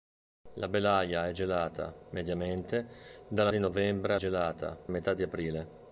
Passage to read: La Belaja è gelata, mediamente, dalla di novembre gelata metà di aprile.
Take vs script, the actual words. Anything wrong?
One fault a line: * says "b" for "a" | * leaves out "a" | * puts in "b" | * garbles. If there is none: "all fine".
all fine